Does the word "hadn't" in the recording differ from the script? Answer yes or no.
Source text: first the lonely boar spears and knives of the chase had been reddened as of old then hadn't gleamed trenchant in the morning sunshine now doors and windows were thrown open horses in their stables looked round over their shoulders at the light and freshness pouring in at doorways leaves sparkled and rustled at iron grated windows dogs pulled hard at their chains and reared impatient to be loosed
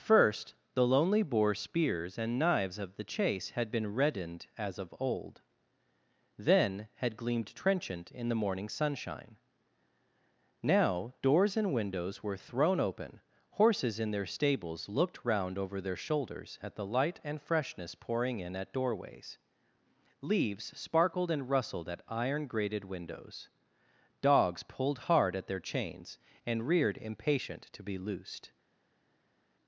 yes